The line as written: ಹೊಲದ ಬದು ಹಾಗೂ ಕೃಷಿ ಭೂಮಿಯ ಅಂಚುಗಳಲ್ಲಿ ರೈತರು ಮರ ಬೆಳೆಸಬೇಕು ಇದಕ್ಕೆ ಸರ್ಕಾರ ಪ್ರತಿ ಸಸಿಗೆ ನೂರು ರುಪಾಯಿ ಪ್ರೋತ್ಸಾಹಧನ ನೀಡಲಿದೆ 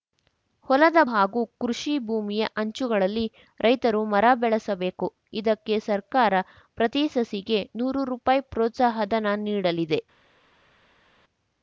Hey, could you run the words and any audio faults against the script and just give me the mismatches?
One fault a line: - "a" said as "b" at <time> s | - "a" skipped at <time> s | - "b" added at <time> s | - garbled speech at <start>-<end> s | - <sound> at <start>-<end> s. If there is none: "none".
- "ಬದು" skipped at 1.0 s